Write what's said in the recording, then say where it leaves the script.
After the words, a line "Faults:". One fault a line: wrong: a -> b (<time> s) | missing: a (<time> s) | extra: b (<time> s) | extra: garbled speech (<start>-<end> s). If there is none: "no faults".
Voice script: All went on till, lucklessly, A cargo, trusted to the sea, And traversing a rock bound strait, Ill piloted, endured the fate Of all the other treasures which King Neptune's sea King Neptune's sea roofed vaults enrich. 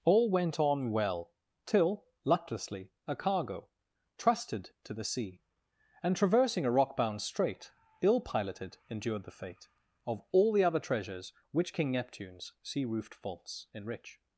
All went on well, till, lucklessly, A cargo, trusted to the sea, And traversing a rock bound strait, Ill piloted, endured the fate Of all the other treasures which King Neptune's sea roofed vaults enrich.
Faults:
extra: well (0.9 s)
missing: King Neptune's sea (12.8 s)